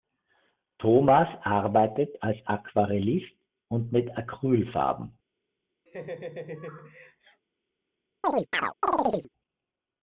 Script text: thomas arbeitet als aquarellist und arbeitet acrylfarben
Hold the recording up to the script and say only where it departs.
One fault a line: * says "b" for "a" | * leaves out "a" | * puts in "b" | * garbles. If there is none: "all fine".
* says "mit" for "arbeitet"